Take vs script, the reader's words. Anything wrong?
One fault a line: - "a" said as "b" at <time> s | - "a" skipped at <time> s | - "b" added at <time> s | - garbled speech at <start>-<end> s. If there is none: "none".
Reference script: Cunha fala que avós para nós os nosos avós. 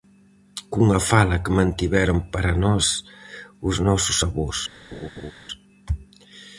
- "avós" said as "mantiveron" at 1.6 s